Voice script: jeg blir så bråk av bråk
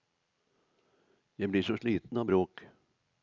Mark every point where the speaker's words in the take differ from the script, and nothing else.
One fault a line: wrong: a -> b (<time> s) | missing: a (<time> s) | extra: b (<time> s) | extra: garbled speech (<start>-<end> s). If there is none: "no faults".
wrong: bråk -> sliten (1.8 s)